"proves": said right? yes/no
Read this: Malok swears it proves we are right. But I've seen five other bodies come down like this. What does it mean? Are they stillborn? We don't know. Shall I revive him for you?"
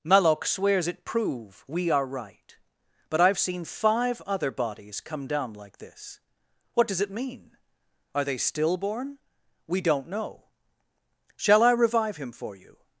no